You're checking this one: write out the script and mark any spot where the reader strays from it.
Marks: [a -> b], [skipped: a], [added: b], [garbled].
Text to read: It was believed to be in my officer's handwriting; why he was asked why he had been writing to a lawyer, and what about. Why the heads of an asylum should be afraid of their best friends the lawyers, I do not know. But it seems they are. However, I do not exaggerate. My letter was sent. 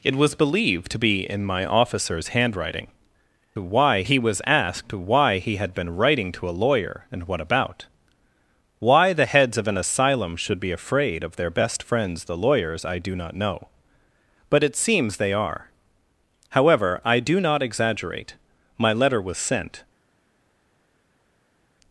It was believed to be in my officer's handwriting; why he was asked why he had been writing to a lawyer, and what about. Why the heads of an asylum should be afraid of their best friends the lawyers, I do not know. But it seems they are. However, I do not exaggerate. My letter was sent.